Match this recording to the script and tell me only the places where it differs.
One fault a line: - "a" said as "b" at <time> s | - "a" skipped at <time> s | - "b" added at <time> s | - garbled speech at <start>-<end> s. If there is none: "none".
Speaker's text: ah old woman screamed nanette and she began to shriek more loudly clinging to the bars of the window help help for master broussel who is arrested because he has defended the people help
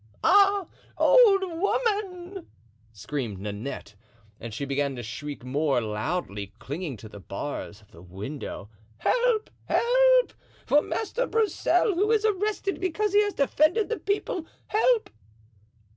none